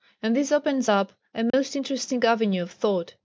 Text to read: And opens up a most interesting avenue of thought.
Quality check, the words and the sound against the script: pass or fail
fail